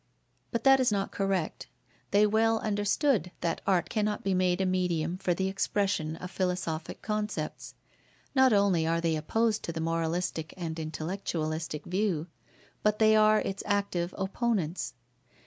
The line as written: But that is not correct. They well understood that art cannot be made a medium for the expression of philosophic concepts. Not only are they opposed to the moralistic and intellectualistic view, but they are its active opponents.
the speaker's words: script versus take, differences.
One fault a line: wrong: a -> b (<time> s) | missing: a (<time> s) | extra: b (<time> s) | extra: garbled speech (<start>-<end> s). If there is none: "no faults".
no faults